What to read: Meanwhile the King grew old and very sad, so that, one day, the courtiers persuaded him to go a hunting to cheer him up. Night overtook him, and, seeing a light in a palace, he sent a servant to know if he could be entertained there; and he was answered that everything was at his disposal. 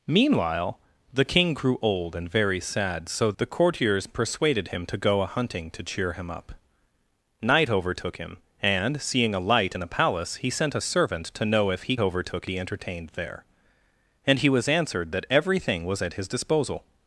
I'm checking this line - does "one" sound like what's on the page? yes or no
no